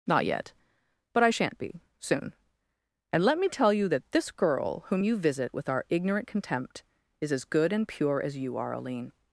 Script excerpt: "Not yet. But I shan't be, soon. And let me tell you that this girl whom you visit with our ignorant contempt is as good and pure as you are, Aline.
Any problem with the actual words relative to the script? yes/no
no